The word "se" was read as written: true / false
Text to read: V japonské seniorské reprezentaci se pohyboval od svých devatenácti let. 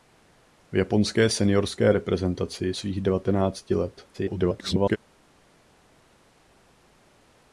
false